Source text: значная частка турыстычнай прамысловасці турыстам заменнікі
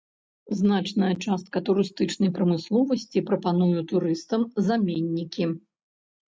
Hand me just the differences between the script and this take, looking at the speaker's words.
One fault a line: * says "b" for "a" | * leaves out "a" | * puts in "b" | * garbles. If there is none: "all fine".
* puts in "прапануе"